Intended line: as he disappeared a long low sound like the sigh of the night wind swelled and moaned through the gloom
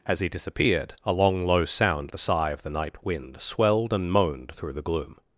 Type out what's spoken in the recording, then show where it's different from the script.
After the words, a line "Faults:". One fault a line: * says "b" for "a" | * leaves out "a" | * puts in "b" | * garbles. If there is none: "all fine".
as he disappeared a long low sound the sigh of the night wind swelled and moaned through the gloom
Faults:
* leaves out "like"